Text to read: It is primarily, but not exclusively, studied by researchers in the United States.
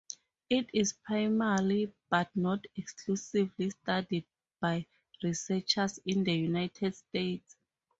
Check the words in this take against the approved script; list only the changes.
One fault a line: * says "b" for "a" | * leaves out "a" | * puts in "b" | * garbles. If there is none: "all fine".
all fine